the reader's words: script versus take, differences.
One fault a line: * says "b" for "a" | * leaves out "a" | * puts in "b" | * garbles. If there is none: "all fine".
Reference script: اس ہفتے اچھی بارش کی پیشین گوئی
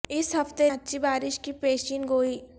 all fine